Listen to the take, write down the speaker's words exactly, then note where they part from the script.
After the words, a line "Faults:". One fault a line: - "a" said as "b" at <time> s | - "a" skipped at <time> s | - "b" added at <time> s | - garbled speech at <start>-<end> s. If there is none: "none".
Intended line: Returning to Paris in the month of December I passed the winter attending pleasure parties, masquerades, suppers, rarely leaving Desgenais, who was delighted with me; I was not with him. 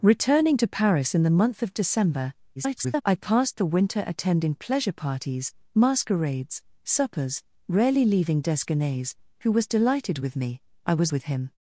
Returning to Paris in the month of December [garbled] I passed the winter attending pleasure parties, masquerades, suppers, rarely leaving Desgenais, who was delighted with me; I was with him.
Faults:
- garbled speech at 2.6-3.0 s
- "not" skipped at 11.1 s